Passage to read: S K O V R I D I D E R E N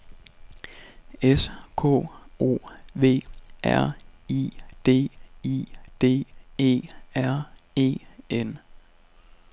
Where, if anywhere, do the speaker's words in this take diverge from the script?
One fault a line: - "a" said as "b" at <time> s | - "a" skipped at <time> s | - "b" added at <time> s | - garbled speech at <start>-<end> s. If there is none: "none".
none